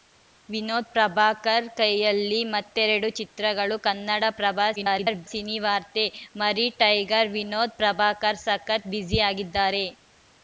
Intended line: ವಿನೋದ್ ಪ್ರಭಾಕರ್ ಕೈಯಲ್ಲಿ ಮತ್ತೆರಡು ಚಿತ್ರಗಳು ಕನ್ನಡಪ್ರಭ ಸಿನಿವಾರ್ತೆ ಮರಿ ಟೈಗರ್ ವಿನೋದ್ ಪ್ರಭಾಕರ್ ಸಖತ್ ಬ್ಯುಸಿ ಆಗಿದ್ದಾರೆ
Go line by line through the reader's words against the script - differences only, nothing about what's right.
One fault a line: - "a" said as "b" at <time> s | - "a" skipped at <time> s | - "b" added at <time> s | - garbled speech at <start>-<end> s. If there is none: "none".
- garbled speech at 4.8-5.3 s